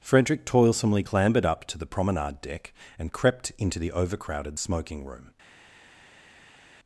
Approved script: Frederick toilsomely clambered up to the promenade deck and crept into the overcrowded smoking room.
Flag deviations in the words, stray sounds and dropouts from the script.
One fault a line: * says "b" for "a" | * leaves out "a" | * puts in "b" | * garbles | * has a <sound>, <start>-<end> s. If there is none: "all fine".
all fine